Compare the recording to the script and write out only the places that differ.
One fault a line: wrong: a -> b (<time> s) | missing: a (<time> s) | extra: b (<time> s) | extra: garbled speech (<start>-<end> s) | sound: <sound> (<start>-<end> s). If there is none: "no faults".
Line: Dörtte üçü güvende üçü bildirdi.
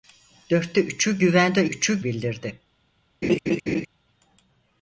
sound: laugh (3.2-3.9 s)